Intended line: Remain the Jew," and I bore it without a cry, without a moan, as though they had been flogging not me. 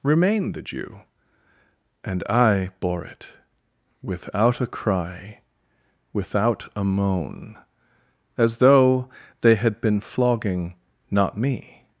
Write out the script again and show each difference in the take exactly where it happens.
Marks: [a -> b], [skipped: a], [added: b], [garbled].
Remain the Jew," and I bore it without a cry, without a moan, as though they had been flogging not me.